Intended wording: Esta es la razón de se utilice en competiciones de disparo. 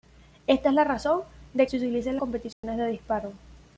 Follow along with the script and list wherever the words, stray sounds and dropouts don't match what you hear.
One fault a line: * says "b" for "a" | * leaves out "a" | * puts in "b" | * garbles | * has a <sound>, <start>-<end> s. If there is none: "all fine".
* has a dropout, 2.5-2.6 s